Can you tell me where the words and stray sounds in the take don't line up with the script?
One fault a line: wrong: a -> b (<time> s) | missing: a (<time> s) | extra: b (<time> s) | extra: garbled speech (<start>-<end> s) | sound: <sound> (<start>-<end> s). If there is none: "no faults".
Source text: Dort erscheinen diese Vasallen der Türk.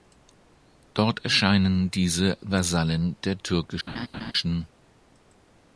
sound: laugh (3.9-4.3 s)